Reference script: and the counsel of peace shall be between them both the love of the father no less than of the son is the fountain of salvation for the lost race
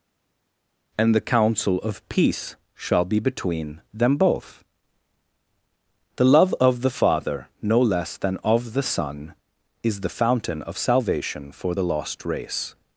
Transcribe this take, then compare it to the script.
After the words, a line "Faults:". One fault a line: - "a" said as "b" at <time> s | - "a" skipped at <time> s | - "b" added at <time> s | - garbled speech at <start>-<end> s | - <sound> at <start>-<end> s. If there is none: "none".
and the counsel of peace shall be between them both the love of the father no less than of the son is the fountain of salvation for the lost race
Faults:
none